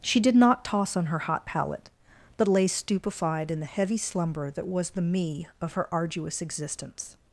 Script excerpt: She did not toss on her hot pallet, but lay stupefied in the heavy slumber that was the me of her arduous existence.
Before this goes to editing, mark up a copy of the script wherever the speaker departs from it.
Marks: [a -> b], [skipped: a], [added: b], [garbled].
She did not toss on her hot pallet, but lay stupefied in the heavy slumber that was the me of her arduous existence.